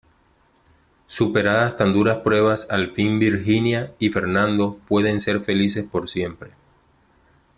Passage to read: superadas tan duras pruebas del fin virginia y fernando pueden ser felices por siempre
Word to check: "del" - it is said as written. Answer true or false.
false